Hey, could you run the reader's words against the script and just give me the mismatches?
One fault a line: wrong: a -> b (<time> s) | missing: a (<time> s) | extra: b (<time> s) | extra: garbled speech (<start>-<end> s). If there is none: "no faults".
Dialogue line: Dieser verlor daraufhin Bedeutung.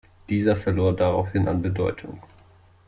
extra: an (1.5 s)